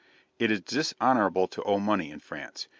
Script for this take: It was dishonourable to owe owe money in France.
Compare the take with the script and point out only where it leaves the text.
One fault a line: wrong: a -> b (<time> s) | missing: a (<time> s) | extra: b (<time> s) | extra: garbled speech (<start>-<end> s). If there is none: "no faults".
wrong: was -> is (0.5 s)
missing: owe (1.8 s)